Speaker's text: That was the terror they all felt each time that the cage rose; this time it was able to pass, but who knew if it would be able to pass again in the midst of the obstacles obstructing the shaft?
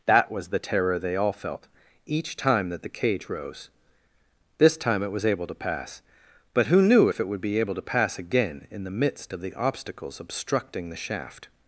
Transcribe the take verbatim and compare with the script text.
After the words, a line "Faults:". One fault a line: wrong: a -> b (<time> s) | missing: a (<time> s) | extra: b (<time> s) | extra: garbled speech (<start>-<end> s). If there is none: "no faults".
That was the terror they all felt each time that the cage rose; this time it was able to pass, but who knew if it would be able to pass again in the midst of the obstacles obstructing the shaft?
Faults:
no faults